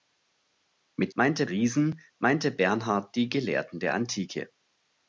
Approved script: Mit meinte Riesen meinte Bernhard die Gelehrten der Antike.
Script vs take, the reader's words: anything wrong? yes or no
no